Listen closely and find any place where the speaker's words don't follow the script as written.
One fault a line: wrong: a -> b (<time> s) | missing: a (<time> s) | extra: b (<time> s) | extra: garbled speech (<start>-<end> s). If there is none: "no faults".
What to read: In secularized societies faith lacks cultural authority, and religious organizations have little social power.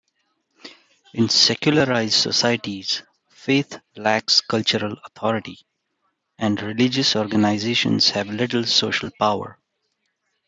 no faults